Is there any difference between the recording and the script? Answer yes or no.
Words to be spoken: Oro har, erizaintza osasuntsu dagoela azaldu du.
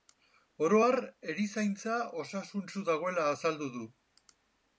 no